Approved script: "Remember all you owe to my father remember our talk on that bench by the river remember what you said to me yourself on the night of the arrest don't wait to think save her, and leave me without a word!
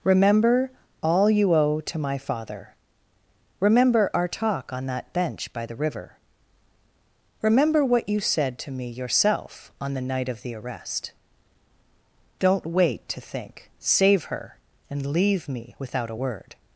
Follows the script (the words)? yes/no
yes